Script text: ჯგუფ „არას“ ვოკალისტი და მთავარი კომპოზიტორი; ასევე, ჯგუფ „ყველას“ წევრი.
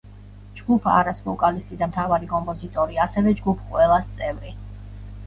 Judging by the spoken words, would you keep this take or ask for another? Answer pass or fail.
pass